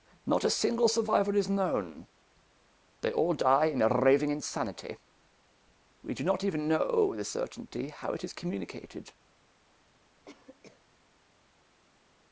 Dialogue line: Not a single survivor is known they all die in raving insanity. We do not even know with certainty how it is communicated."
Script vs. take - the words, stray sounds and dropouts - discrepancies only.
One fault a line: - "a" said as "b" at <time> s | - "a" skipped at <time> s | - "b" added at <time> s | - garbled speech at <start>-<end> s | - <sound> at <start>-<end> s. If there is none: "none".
- cough at 10.2-10.9 s